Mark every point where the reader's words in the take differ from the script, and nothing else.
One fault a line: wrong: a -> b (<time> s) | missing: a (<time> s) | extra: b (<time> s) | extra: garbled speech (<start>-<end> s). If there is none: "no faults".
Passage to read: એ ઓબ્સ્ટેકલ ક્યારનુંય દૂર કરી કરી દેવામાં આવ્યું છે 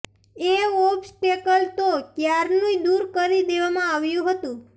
extra: તો (1.8 s)
missing: કરી (3.5 s)
wrong: છે -> હતું (4.3 s)